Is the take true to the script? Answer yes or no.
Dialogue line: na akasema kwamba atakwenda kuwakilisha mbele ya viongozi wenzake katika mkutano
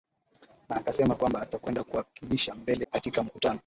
no